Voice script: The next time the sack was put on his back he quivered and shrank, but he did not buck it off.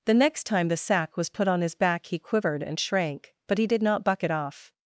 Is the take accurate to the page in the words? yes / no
yes